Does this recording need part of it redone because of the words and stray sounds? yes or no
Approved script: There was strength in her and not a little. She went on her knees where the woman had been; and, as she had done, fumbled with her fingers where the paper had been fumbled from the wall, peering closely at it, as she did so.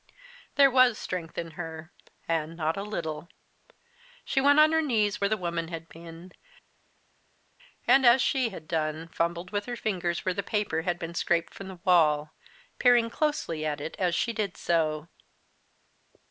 yes